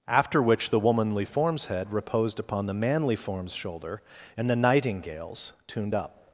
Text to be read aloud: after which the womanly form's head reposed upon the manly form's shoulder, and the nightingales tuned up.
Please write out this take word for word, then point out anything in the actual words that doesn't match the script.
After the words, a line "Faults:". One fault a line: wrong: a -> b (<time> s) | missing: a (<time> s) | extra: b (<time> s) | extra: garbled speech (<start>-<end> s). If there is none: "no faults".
after which the womanly form's head reposed upon the manly form's shoulder, and the nightingales tuned up.
Faults:
no faults